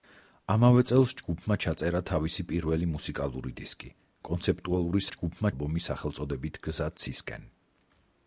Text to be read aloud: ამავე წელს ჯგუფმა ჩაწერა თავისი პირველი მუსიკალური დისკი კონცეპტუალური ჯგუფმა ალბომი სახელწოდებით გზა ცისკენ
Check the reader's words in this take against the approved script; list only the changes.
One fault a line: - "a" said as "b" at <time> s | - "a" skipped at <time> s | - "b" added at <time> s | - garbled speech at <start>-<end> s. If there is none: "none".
none